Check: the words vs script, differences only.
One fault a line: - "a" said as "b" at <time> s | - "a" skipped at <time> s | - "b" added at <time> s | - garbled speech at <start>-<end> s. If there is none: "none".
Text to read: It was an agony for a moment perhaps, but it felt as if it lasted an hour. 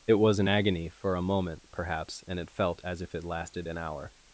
- "but" said as "and" at 2.3 s